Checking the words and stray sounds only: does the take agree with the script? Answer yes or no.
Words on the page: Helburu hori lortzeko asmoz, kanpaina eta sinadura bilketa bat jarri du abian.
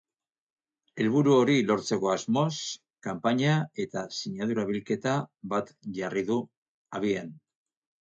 yes